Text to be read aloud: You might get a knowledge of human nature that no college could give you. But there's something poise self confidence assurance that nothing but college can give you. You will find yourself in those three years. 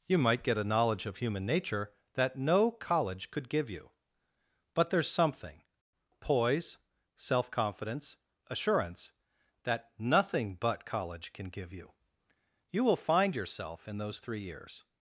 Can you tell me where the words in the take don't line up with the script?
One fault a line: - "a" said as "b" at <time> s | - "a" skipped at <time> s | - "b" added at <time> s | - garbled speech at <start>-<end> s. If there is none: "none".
none